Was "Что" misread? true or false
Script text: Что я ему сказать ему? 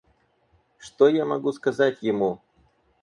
false